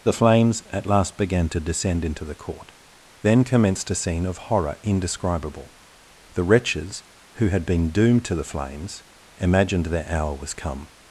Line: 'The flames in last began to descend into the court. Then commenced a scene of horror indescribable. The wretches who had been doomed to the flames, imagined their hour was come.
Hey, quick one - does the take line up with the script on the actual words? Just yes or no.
no